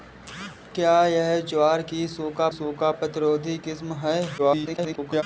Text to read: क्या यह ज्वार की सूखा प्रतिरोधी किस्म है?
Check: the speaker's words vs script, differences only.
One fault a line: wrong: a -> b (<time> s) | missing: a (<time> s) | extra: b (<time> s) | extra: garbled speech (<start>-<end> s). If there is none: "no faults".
extra: सूखा (2.5 s)
extra: garbled speech (4.4-5.2 s)